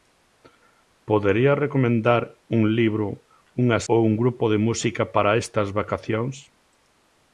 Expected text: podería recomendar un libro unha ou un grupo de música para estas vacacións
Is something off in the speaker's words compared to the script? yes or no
no